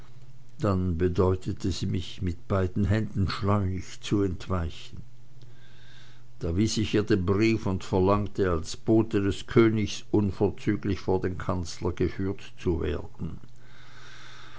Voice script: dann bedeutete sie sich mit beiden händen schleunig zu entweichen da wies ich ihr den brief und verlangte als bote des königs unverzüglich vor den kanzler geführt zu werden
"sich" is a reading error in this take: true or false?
true